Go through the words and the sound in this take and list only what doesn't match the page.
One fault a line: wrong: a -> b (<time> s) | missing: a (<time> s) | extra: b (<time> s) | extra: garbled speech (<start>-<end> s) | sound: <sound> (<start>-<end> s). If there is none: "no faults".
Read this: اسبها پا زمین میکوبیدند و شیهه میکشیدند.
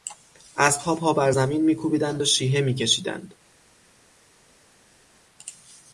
extra: بر (1.1 s)